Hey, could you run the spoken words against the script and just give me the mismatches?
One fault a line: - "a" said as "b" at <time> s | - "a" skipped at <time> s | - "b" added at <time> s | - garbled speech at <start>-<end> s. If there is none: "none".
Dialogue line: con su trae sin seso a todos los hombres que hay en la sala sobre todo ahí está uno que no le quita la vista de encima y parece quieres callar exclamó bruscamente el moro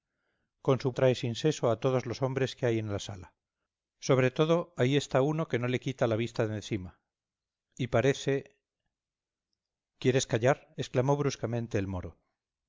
none